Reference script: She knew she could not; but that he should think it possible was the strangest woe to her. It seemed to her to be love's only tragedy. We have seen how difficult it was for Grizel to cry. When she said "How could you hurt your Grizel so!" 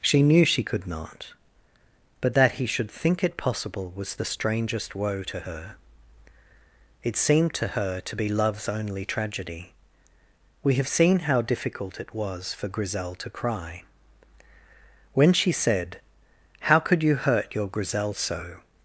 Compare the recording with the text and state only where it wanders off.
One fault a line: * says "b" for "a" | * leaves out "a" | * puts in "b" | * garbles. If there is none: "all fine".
all fine